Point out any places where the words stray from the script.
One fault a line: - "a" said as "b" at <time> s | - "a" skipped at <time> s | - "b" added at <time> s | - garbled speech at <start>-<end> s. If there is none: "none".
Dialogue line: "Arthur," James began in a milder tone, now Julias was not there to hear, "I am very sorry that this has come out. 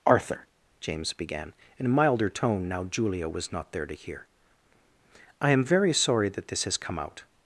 - "Julias" said as "Julia" at 2.8 s